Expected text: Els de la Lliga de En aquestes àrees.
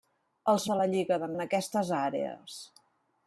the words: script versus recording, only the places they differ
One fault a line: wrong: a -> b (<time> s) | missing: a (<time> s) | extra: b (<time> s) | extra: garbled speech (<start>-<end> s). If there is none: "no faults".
no faults